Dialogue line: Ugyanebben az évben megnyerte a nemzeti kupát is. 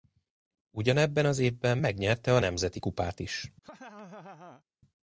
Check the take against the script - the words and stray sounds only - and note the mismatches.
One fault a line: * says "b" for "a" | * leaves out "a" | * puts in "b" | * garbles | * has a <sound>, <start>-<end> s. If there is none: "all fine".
* has a laugh, 3.6-4.6 s